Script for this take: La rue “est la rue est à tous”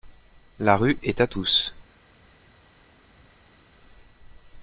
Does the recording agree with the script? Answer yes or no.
no